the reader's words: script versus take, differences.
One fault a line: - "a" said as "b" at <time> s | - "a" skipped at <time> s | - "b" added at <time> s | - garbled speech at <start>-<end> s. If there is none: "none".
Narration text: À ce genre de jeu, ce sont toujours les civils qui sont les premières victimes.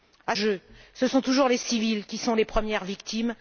- "ce genre de" skipped at 0.3 s